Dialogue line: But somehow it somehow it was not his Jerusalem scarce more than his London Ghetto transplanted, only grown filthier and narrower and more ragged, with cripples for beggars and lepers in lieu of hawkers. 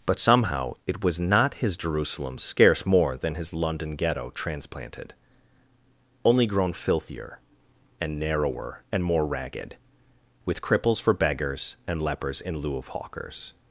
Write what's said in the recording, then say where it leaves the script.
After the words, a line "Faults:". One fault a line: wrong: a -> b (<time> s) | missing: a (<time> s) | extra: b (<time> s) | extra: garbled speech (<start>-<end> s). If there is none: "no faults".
But somehow it was not his Jerusalem scarce more than his London Ghetto transplanted, only grown filthier and narrower and more ragged, with cripples for beggars and lepers in lieu of hawkers.
Faults:
missing: somehow it (1.0 s)